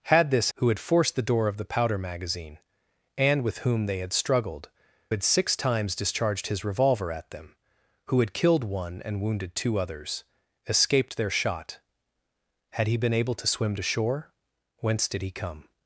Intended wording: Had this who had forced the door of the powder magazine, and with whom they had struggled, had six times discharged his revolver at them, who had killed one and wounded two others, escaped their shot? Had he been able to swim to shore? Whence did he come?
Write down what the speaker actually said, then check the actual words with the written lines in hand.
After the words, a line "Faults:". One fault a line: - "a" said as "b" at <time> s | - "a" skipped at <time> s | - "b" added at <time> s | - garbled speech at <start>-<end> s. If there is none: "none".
Had this who had forced the door of the powder magazine, and with whom they had struggled, had six times discharged his revolver at them, who had killed one and wounded two others, escaped their shot? Had he been able to swim to shore? Whence did he come?
Faults:
none